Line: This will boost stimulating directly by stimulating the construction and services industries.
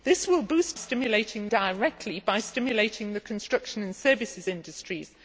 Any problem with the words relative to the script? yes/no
no